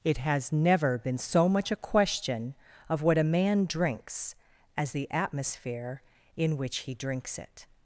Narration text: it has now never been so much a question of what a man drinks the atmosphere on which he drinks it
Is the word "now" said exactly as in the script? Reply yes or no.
no